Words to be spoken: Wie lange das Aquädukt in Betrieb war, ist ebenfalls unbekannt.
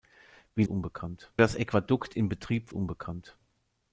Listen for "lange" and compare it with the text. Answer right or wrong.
wrong